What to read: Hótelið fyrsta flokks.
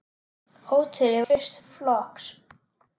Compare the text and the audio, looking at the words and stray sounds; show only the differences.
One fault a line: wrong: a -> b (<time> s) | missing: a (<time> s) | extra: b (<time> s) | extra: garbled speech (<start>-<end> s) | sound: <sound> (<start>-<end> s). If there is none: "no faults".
no faults